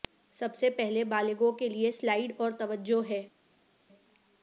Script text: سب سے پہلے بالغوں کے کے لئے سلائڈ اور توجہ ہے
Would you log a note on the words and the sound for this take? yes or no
yes